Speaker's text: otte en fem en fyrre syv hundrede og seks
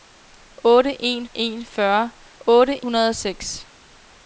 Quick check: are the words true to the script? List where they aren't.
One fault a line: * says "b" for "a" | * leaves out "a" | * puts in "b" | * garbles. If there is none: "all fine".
* leaves out "fem"
* says "otte" for "syv"